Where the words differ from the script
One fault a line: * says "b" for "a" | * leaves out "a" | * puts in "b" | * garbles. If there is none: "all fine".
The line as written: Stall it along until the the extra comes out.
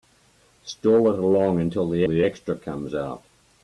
all fine